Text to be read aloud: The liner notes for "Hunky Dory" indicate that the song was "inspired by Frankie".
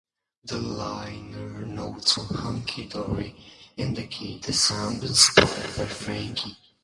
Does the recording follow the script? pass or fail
fail